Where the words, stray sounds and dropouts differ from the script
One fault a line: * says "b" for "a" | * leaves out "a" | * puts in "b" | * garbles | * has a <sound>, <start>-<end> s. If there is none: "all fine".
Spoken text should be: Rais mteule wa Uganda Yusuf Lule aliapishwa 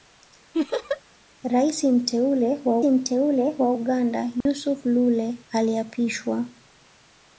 * has a laugh, 0.5-1.0 s
* puts in "mteule wa"
* has a dropout, 4.4-4.5 s